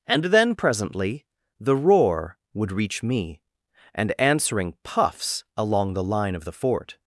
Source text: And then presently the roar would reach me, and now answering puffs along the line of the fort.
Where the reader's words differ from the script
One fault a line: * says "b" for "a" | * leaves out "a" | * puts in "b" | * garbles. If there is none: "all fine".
* leaves out "now"